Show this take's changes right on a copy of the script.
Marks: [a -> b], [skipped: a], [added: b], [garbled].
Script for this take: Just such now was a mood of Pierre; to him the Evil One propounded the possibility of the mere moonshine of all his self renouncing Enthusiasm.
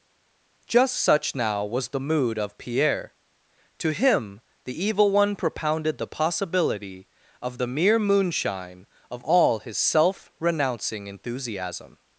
Just such now was [a -> the] mood of Pierre; to him the Evil One propounded the possibility of the mere moonshine of all his self renouncing Enthusiasm.